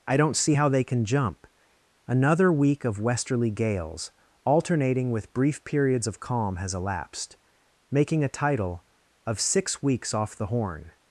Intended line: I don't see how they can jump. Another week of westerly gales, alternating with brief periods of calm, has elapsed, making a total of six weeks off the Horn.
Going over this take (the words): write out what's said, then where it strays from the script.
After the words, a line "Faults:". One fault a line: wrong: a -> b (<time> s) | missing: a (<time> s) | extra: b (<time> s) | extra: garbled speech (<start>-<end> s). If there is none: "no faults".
I don't see how they can jump. Another week of westerly gales, alternating with brief periods of calm, has elapsed, making a title of six weeks off the Horn.
Faults:
wrong: total -> title (8.3 s)